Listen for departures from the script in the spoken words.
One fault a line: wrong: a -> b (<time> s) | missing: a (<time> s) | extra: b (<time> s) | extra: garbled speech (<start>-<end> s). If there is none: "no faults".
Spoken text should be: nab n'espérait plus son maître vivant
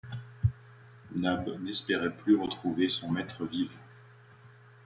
extra: retrouver (2.4 s)